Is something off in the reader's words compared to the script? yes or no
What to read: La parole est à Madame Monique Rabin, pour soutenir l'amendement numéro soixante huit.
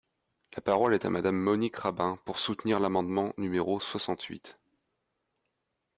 no